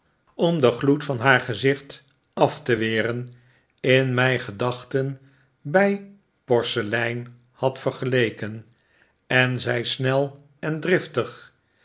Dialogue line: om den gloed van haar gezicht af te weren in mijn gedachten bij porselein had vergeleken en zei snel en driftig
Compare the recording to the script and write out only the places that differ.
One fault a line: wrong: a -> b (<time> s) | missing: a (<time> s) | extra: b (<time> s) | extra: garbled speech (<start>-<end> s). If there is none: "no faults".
no faults